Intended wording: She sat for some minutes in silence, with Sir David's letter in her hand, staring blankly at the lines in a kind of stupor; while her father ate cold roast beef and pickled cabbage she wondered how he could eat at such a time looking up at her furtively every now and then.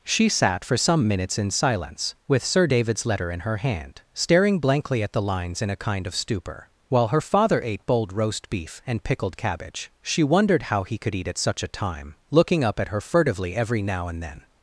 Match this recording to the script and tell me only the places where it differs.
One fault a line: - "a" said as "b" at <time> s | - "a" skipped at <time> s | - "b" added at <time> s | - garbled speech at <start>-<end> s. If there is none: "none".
- "cold" said as "bold" at 7.8 s